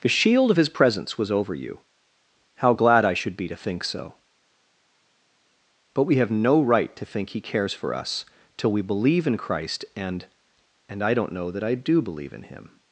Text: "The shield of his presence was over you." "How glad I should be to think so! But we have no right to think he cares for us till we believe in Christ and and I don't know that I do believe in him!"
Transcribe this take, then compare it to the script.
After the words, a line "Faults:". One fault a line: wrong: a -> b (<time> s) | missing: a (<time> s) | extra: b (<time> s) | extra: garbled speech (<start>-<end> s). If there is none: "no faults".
"The shield of his presence was over you." "How glad I should be to think so! But we have no right to think he cares for us till we believe in Christ and and I don't know that I do believe in him!"
Faults:
no faults